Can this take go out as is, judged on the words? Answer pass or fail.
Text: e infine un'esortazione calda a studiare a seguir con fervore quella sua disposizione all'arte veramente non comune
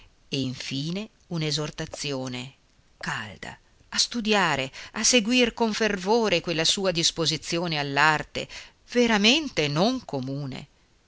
pass